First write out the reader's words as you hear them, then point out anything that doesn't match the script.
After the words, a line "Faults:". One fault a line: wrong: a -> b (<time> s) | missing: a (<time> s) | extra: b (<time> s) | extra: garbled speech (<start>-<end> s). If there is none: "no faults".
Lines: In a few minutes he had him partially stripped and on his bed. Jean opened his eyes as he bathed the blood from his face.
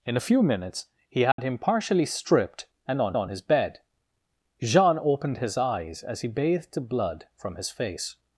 In a few minutes he had him partially stripped and on on his bed. Jean opened his eyes as he bathed the blood from his face.
Faults:
extra: on (3.2 s)